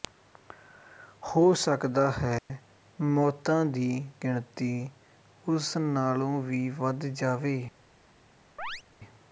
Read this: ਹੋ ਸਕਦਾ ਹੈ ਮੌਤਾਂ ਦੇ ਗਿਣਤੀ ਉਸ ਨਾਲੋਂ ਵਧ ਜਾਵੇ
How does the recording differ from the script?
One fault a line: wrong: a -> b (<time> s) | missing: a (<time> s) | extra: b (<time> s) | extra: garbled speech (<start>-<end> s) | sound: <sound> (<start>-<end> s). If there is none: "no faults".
sound: dropout (2.4-2.5 s)
wrong: ਦੇ -> ਦੀ (3.7 s)
extra: ਵੀ (6.4 s)
sound: chirp (8.6-8.8 s)